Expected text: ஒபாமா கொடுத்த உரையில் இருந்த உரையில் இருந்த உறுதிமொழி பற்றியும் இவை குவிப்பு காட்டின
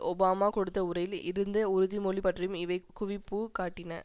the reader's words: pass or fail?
fail